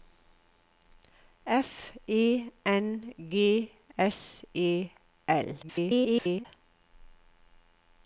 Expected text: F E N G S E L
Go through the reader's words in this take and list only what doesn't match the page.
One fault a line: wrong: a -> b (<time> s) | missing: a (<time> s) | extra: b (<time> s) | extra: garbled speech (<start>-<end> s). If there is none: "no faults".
extra: garbled speech (5.6-6.5 s)